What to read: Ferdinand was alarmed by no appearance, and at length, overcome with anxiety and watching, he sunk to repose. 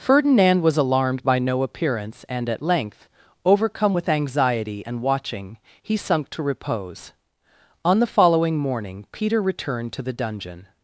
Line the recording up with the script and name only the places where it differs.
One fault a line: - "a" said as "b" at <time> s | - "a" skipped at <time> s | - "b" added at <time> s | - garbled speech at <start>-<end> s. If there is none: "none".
- "On the following morning Peter returned to the dungeon" added at 7.8 s